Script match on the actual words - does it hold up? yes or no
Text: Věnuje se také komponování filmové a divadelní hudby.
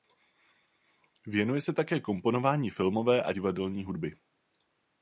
yes